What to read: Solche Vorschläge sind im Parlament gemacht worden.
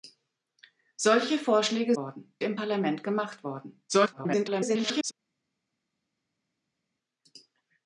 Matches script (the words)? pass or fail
fail